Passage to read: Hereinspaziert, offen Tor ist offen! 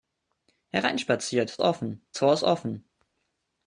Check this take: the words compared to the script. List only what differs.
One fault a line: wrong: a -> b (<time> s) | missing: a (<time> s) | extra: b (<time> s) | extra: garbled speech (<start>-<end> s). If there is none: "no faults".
no faults